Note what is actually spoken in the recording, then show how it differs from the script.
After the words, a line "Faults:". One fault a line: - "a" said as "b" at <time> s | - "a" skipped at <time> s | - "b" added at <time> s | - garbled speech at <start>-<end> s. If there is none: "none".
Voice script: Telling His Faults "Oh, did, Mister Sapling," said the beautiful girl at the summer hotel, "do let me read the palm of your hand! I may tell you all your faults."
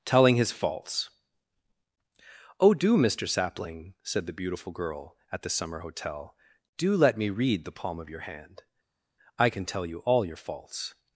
Telling His Faults "Oh, do, Mister Sapling," said the beautiful girl at the summer hotel, "do let me read the palm of your hand! I can tell you all your faults."
Faults:
- "did" said as "do" at 2.7 s
- "may" said as "can" at 9.5 s